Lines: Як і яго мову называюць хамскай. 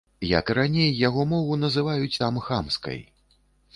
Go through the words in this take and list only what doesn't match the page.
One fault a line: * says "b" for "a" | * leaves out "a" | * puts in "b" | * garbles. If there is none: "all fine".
* puts in "раней"
* puts in "там"